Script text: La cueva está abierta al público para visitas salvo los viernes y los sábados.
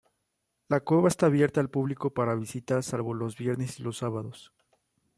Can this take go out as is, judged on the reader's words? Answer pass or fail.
pass